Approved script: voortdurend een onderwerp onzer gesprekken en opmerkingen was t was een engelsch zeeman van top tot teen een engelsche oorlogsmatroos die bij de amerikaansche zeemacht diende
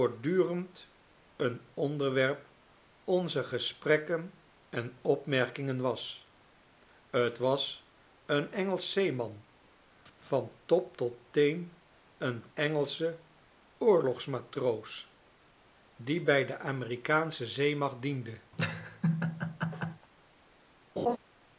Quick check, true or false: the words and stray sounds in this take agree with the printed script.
false